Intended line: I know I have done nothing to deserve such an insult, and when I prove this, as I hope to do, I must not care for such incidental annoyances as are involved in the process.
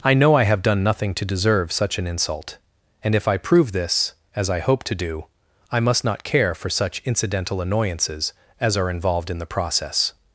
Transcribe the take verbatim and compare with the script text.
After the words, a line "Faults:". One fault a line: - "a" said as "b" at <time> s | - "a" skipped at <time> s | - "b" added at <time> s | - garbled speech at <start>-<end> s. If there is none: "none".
I know I have done nothing to deserve such an insult, and if I prove this, as I hope to do, I must not care for such incidental annoyances as are involved in the process.
Faults:
- "when" said as "if" at 3.1 s